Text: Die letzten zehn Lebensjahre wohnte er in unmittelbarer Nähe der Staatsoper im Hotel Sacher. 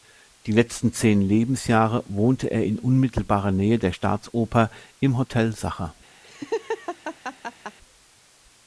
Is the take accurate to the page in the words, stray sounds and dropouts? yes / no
no